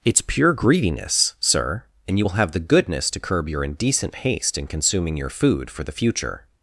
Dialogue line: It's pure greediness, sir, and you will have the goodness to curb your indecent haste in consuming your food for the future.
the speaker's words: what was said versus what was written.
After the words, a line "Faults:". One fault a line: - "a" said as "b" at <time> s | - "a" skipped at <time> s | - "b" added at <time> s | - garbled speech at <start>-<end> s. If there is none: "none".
It's pure greediness, sir, and you will have the goodness to curb your indecent haste in consuming your food for the future.
Faults:
none